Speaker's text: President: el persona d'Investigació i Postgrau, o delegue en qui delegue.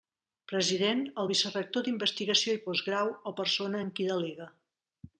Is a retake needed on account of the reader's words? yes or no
yes